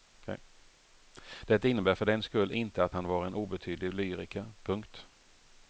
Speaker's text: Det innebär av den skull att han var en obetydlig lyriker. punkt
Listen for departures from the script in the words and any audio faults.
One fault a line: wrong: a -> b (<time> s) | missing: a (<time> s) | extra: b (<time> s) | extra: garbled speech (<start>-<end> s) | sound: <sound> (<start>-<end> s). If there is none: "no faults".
wrong: av -> för (1.9 s)
extra: inte (2.5 s)